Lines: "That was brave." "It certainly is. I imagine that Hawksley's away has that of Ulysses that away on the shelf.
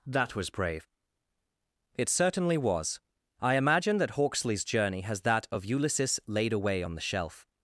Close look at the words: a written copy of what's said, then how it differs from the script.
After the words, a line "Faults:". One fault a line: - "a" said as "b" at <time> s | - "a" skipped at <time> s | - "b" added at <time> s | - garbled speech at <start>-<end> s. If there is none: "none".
"That was brave." "It certainly was. I imagine that Hawksley's journey has that of Ulysses laid away on the shelf.
Faults:
- "is" said as "was" at 2.6 s
- "away" said as "journey" at 4.6 s
- "that" said as "laid" at 6.3 s